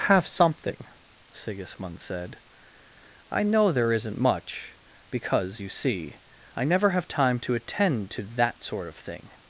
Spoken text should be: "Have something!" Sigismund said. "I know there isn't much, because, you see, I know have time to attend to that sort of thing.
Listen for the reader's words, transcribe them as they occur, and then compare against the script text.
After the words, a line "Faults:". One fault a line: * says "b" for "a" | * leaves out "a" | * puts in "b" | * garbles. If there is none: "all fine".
"Have something!" Sigismund said. "I know there isn't much, because, you see, I never have time to attend to that sort of thing.
Faults:
* says "never" for "know"